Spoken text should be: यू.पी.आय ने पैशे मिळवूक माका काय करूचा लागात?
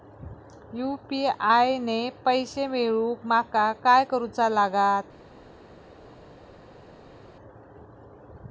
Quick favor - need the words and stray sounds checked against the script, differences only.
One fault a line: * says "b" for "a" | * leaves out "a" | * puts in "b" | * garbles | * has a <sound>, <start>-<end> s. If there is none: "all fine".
all fine